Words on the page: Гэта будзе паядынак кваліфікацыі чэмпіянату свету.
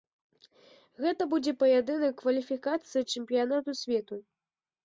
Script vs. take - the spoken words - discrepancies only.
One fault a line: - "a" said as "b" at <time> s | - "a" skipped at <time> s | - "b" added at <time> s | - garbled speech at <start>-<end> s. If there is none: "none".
none